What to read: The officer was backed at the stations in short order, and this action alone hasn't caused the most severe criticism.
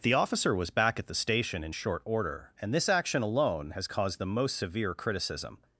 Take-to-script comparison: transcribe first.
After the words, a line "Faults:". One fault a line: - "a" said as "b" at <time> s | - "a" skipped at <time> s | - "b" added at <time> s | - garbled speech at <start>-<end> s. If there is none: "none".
The officer was back at the station in short order, and this action alone has caused the most severe criticism.
Faults:
- "backed" said as "back" at 0.7 s
- "stations" said as "station" at 1.1 s
- "hasn't" said as "has" at 3.7 s